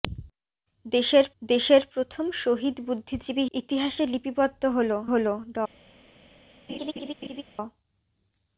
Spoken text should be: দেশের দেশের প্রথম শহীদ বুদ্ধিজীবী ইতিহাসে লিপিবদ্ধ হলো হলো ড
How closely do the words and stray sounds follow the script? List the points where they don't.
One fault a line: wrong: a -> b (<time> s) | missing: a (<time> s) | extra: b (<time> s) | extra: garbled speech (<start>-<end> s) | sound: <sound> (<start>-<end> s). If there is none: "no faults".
sound: laugh (6.7-7.4 s)